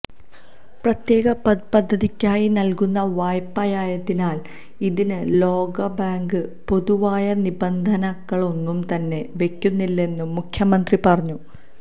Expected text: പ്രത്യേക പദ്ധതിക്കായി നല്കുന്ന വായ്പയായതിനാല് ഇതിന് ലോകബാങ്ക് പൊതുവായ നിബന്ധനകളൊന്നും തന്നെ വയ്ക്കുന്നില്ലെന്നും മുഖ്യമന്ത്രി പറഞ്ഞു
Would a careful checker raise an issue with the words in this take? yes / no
no